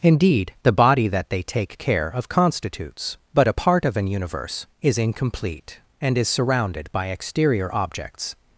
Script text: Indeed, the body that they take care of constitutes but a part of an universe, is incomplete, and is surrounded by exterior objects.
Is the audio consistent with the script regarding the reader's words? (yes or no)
yes